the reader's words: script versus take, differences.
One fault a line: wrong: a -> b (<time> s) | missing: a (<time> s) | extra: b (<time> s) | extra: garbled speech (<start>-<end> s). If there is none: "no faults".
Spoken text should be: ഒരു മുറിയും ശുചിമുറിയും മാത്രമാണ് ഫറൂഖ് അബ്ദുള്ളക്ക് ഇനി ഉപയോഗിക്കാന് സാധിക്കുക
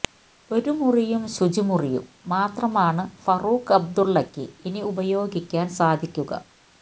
no faults